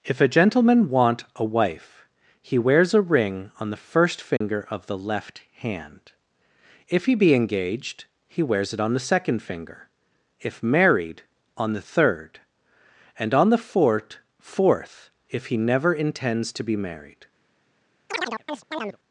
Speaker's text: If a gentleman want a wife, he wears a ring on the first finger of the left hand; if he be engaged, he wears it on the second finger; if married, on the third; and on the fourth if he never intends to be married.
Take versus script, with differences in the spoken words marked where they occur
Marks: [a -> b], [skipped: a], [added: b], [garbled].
If a gentleman want a wife, he wears a ring on the first finger of the left hand; if he be engaged, he wears it on the second finger; if married, on the third; and on the fourth [added: fourth] if he never intends to be married.